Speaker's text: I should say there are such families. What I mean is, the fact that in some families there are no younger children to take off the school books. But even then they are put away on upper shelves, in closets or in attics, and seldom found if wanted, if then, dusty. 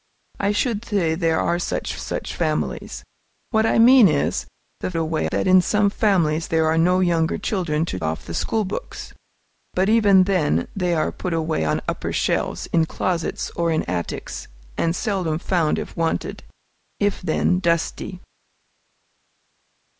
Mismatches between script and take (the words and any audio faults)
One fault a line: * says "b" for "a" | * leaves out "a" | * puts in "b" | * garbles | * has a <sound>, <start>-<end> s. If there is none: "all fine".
* puts in "such"
* says "away" for "fact"
* leaves out "take"